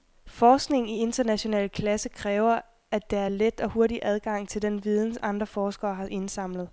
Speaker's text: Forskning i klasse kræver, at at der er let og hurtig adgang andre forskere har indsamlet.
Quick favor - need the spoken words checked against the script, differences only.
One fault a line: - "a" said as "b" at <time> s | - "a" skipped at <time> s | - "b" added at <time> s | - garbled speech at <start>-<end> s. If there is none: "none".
- "international" added at 1.0 s
- "at" skipped at 3.1 s
- "til den viden" added at 4.5 s